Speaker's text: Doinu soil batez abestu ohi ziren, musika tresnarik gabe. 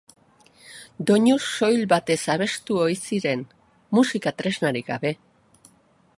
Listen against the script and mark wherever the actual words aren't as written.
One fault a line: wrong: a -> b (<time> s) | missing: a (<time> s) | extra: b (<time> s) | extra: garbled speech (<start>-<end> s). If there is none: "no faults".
no faults